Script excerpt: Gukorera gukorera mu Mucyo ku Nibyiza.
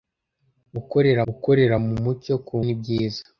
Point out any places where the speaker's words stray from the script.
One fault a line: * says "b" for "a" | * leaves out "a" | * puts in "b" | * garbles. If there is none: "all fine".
all fine